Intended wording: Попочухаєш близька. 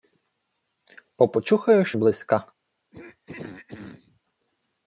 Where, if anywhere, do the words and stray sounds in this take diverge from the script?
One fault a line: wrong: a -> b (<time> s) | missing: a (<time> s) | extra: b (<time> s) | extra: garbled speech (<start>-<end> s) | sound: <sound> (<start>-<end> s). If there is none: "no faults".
sound: throat clearing (2.9-4.2 s)